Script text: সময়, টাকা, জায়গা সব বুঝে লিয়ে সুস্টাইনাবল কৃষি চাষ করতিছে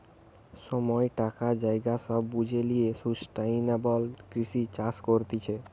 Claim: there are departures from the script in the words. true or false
false